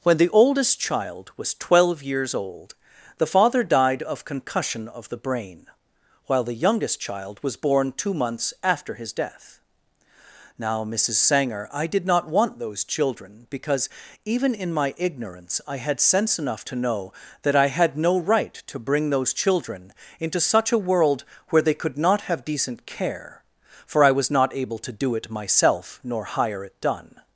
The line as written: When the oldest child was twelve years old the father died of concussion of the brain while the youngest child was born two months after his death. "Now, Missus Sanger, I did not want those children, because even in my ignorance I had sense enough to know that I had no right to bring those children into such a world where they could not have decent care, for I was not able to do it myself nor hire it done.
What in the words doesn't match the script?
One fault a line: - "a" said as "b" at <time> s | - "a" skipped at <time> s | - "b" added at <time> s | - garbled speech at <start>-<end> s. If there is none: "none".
none